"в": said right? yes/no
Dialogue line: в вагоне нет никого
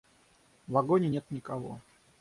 yes